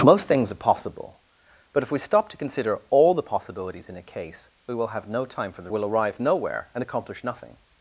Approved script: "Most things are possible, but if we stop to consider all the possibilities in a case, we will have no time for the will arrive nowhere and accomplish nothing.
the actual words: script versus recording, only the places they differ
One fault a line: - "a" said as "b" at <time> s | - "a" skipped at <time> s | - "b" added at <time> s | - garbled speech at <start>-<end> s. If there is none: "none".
none